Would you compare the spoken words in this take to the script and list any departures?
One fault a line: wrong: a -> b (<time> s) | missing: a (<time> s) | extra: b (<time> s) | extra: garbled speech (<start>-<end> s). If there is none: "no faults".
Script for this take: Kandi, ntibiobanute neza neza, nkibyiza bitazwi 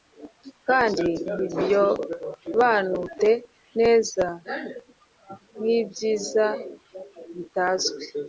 missing: neza (4.3 s)